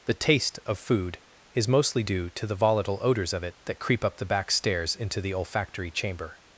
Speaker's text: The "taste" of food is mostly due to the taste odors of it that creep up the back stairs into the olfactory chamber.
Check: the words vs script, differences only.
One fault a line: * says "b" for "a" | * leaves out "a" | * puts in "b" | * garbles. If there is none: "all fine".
* says "volatile" for "taste"